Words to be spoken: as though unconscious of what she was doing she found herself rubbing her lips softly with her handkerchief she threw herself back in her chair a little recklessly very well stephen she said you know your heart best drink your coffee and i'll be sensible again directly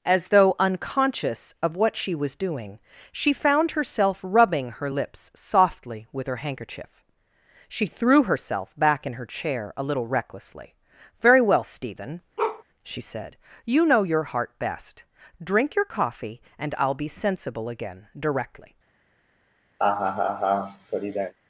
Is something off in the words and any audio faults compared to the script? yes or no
yes